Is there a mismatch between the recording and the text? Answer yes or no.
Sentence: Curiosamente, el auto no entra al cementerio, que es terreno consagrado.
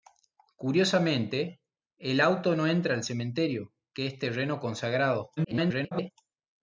yes